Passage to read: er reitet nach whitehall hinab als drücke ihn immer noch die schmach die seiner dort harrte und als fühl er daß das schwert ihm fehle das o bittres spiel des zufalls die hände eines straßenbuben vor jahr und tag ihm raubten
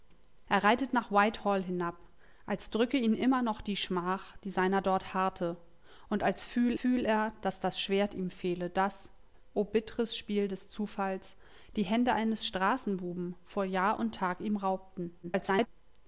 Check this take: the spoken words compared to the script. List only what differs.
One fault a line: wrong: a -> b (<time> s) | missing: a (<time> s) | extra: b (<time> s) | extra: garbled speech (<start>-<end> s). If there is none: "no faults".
extra: fühl (6.8 s)
extra: garbled speech (15.2-15.7 s)